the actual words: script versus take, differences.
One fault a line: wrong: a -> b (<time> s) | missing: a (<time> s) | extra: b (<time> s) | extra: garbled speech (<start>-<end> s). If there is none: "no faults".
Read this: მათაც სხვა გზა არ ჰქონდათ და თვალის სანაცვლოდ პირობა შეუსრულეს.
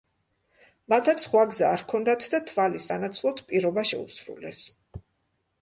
no faults